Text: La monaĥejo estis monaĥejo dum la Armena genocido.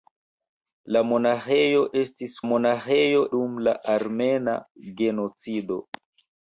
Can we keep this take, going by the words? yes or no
yes